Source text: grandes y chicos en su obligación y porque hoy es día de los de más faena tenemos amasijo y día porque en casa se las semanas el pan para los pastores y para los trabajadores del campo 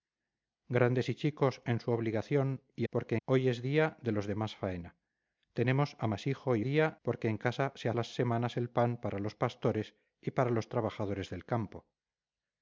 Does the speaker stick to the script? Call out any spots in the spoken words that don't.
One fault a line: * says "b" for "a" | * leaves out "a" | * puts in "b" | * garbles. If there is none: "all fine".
all fine